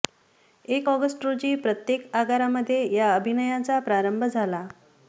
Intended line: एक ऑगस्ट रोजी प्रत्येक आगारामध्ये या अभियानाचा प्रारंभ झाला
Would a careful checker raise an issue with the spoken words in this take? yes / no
no